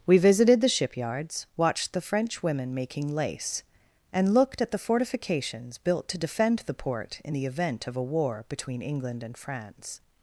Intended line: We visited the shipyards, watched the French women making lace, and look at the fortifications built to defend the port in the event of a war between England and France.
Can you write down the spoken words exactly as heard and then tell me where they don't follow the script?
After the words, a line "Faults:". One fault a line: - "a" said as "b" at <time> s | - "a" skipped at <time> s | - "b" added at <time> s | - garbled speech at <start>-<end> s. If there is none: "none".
We visited the shipyards, watched the French women making lace, and looked at the fortifications built to defend the port in the event of a war between England and France.
Faults:
- "look" said as "looked" at 4.3 s